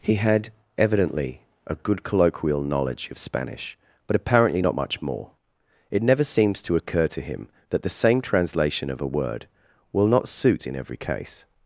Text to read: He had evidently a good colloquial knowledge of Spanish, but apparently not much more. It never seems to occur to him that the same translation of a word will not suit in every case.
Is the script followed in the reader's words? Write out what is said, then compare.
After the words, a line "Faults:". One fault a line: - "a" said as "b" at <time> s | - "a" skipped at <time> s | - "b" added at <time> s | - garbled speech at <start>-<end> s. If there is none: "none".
He had evidently a good colloquial knowledge of Spanish, but apparently not much more. It never seems to occur to him that the same translation of a word will not suit in every case.
Faults:
none